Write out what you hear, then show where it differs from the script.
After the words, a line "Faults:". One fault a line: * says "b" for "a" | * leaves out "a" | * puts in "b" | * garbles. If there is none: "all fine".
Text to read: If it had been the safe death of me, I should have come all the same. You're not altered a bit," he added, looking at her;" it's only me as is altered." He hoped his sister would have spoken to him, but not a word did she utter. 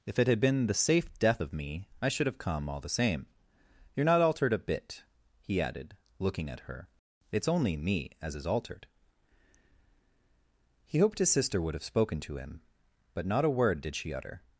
If it had been the safe death of me, I should have come all the same. You're not altered a bit," he added, looking at her;" it's only me as is altered." He hoped his sister would have spoken to him, but not a word did she utter.
Faults:
all fine